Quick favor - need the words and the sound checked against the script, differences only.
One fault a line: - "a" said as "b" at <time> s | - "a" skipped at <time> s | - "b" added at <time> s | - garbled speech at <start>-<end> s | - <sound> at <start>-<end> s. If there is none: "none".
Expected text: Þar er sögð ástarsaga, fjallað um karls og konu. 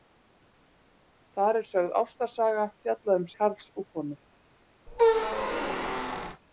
- squeak at 4.9-6.4 s